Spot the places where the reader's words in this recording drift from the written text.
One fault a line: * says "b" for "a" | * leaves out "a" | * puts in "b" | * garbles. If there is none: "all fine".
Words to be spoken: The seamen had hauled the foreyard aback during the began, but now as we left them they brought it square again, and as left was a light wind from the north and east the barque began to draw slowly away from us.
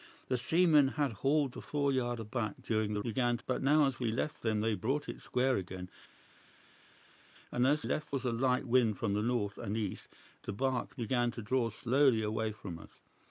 all fine